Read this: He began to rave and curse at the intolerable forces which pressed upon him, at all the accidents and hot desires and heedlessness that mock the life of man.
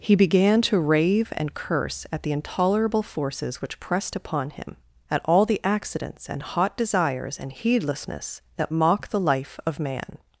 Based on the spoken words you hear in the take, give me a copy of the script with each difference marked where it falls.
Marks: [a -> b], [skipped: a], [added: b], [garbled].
He began to rave and curse at the intolerable forces which pressed upon him, at all the accidents and hot desires and heedlessness that mock the life of man.